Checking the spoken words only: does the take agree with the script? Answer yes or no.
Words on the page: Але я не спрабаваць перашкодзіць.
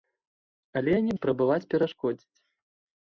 yes